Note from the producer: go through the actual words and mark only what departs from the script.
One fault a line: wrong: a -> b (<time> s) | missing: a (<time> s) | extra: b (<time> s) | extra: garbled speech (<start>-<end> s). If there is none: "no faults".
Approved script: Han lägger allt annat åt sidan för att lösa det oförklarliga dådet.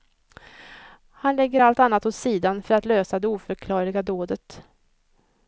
no faults